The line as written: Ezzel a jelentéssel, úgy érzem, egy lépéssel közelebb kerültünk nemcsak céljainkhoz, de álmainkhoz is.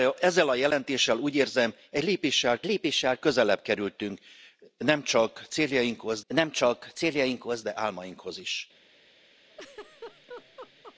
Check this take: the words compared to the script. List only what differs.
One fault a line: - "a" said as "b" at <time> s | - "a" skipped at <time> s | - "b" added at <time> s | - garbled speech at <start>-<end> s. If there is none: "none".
- "lépéssel" added at 2.6 s
- "nemcsak céljainkhoz" added at 6.3 s